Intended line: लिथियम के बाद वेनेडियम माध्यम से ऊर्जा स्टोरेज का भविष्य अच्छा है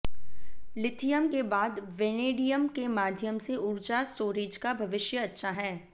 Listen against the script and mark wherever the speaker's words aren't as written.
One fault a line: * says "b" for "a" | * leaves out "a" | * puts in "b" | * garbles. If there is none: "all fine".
* puts in "के"